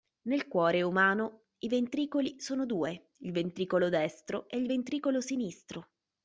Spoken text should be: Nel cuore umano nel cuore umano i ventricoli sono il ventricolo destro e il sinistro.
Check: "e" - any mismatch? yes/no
no